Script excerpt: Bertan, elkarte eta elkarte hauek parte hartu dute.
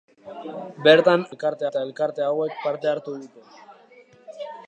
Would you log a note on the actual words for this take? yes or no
no